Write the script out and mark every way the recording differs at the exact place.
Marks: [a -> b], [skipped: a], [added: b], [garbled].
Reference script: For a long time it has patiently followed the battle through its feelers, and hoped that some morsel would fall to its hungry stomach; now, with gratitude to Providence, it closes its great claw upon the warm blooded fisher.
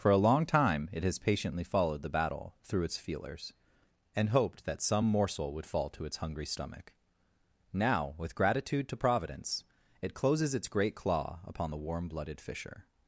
For a long time it has patiently followed the battle through its feelers, and hoped that some morsel would fall to its hungry stomach; now, with gratitude to Providence, it closes its great claw upon the warm blooded fisher.